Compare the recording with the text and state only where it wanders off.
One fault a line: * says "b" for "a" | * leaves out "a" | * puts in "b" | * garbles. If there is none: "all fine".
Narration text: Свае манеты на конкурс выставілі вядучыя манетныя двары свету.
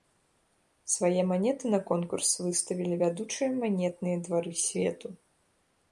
all fine